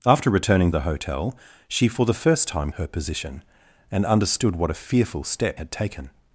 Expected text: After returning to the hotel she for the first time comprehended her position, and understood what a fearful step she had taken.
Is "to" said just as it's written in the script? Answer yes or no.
no